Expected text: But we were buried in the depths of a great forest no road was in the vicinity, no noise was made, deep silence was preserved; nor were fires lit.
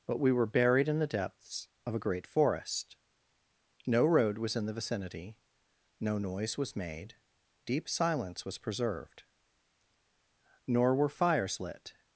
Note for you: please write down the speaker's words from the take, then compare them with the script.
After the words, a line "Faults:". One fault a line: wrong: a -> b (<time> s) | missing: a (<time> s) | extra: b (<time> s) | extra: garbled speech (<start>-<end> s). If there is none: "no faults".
But we were buried in the depths of a great forest no road was in the vicinity, no noise was made, deep silence was preserved; nor were fires lit.
Faults:
no faults